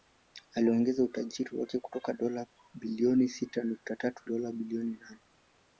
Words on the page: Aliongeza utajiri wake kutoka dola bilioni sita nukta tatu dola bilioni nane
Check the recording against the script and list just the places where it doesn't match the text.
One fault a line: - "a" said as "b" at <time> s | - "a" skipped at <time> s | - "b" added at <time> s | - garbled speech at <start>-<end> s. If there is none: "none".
none